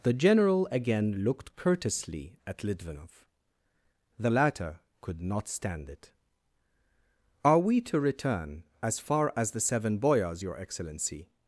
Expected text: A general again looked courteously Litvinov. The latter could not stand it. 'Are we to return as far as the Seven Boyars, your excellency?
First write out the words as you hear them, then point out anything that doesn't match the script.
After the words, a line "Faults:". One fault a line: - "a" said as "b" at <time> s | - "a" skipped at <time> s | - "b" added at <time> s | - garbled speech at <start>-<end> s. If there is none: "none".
The general again looked courteously at Litvinov. The latter could not stand it. 'Are we to return as far as the Seven Boyars, your excellency?
Faults:
- "A" said as "The" at 0.0 s
- "at" added at 2.5 s